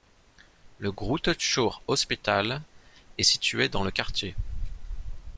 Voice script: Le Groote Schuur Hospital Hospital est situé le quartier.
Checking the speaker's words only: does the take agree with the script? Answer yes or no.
no